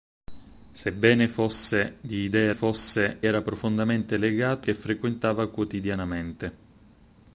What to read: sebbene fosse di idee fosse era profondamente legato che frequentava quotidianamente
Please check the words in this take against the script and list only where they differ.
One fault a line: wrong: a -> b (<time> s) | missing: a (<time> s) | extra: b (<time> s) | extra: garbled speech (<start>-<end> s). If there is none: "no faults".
no faults